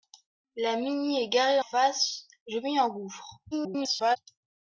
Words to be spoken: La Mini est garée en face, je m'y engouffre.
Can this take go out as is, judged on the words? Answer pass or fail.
fail